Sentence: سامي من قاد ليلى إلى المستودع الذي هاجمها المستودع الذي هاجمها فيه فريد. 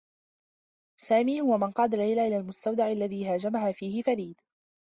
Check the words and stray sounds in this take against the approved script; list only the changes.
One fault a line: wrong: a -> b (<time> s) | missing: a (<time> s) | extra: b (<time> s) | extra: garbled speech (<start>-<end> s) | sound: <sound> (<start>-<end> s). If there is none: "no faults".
extra: هو (1.4 s)
missing: المستودع الذي هاجمها (3.7 s)